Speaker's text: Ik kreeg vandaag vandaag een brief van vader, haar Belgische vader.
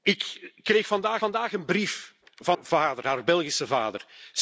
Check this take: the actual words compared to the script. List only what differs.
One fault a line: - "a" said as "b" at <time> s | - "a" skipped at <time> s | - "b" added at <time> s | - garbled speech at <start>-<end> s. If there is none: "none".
none